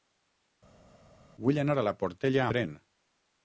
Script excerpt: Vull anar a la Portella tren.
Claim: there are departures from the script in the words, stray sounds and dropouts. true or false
false